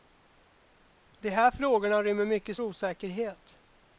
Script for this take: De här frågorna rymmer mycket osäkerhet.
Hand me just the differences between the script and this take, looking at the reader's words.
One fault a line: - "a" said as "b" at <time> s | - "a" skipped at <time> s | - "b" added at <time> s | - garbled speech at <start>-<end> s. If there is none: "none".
none